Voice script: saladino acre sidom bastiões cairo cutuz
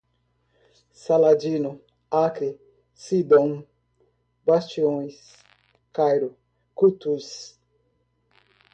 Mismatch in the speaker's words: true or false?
false